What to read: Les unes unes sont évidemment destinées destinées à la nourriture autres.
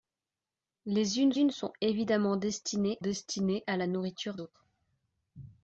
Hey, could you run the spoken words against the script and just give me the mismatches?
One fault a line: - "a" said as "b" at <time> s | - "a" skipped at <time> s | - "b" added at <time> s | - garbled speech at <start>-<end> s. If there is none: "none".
none